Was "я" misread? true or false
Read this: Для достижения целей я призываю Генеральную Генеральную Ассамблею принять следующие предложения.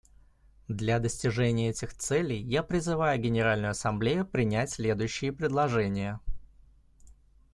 false